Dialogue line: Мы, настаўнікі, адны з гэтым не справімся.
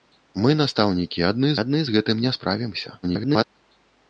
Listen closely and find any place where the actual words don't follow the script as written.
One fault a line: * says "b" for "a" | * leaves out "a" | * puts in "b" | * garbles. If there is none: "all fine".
* puts in "адны"
* garbles